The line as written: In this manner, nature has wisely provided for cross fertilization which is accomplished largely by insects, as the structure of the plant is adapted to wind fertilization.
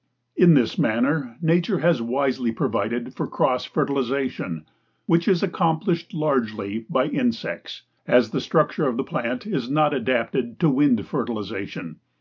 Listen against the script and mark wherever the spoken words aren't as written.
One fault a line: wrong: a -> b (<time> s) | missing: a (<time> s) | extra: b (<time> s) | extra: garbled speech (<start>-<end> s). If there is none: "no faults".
extra: not (9.7 s)